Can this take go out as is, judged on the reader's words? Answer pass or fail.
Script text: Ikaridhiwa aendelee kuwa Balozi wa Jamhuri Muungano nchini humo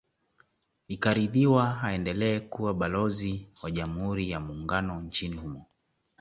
fail